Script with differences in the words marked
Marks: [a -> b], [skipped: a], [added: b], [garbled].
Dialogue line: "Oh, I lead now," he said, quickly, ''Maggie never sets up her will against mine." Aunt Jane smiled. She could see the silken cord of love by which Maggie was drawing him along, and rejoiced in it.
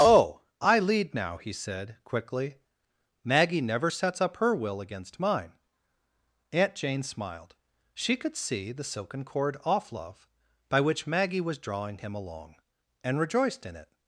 "Oh, I lead now," he said, quickly, ''Maggie never sets up her will against mine." Aunt Jane smiled. She could see the silken cord [of -> off] love by which Maggie was drawing him along, and rejoiced in it.